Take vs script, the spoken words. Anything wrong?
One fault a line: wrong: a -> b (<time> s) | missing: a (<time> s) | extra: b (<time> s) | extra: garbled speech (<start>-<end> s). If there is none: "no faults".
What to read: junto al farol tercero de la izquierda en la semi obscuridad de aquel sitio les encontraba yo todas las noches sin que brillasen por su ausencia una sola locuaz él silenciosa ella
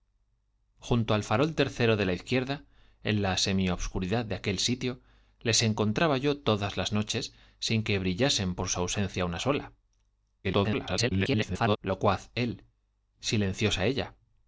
extra: garbled speech (10.4-11.8 s)